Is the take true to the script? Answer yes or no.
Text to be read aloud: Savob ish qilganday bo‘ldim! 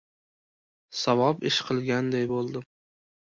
yes